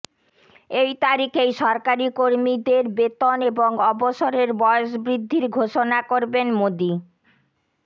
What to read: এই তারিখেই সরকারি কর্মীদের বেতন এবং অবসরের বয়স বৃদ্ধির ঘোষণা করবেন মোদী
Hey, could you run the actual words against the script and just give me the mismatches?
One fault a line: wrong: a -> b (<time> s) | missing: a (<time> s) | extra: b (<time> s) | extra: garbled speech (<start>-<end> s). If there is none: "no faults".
no faults